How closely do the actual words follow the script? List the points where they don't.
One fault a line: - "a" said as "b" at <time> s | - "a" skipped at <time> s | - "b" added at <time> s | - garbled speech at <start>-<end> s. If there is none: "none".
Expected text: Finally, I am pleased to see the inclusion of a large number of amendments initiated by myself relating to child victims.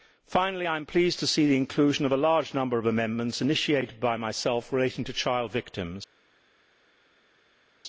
none